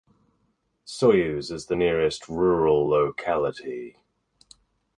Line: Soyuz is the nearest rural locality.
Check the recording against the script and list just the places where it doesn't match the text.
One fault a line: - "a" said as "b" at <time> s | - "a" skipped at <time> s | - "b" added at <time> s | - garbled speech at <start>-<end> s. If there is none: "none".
none